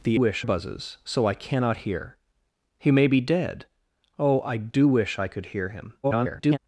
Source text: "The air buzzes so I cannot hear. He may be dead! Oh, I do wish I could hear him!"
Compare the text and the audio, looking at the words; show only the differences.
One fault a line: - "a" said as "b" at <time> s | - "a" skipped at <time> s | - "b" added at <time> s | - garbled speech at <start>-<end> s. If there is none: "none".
- "air" said as "wish" at 0.1 s
- garbled speech at 6.0-6.6 s